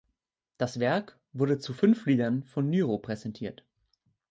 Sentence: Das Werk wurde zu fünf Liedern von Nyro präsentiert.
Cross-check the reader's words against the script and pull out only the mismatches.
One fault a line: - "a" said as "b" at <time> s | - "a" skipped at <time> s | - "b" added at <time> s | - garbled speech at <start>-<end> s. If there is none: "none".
none